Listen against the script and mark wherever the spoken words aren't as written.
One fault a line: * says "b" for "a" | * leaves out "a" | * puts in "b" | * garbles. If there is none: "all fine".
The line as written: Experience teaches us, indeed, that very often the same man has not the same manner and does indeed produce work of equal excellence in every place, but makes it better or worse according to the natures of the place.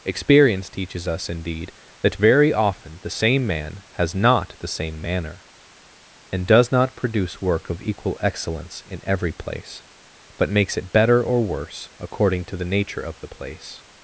* says "not" for "indeed"
* says "nature" for "natures"